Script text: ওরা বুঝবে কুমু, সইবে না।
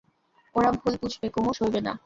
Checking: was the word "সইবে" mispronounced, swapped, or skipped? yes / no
no